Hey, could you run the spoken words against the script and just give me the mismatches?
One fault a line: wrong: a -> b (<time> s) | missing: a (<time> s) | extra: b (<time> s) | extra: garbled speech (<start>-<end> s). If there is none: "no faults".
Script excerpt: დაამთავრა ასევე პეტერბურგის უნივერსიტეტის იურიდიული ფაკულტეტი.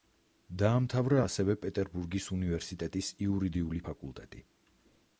no faults